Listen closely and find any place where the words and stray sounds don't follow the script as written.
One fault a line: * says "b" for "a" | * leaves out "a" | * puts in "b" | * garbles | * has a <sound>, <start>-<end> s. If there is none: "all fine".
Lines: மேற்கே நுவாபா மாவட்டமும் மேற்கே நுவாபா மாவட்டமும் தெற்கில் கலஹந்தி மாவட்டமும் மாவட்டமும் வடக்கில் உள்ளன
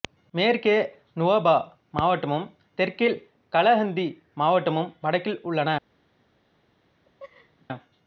* leaves out "மேற்கே நுவாபா மாவட்டமும்"
* leaves out "மாவட்டமும்"
* has a laugh, 7.0-7.7 s